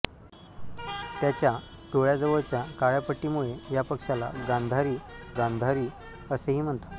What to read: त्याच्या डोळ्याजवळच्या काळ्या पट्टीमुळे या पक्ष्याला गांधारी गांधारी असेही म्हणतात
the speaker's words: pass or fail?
pass